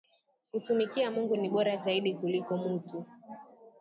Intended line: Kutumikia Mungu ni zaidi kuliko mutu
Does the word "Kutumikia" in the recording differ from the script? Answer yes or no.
no